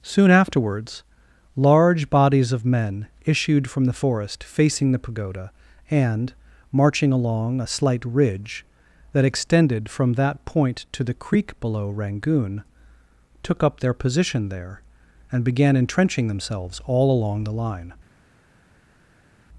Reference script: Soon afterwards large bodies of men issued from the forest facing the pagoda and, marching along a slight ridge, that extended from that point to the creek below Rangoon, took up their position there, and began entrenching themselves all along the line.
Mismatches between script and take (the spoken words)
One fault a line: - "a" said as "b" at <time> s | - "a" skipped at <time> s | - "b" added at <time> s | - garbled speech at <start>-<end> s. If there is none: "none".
none